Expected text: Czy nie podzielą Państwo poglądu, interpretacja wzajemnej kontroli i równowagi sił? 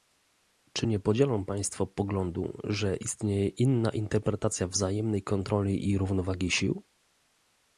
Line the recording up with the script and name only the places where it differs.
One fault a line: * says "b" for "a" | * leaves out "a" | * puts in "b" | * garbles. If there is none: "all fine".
* puts in "że istnieje inna"